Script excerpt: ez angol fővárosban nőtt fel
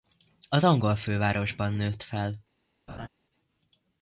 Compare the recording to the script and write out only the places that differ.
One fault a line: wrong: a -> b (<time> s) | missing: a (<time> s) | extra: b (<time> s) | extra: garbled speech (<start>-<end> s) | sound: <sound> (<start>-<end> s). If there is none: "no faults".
wrong: ez -> az (0.5 s)
sound: laugh (2.9-3.1 s)